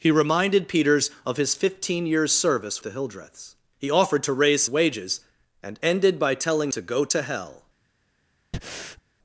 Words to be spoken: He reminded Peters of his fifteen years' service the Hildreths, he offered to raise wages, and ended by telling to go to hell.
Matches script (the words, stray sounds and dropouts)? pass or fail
fail